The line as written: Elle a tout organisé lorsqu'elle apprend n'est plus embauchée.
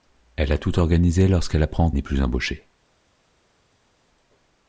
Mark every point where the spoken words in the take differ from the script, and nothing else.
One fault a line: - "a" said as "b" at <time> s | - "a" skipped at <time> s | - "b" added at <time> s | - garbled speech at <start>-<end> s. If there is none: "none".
none